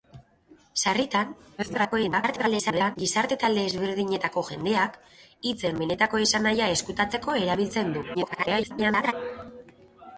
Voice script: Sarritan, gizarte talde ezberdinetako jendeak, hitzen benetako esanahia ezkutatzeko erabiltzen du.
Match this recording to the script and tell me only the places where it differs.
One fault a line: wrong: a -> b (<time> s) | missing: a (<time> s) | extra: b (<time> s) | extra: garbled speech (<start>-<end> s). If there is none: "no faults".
extra: garbled speech (1.6-3.0 s)
extra: garbled speech (8.1-9.1 s)